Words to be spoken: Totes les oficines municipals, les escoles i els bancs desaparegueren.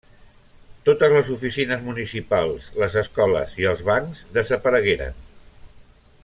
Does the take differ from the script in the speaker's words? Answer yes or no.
no